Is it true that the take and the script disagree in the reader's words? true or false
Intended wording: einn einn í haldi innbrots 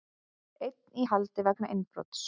true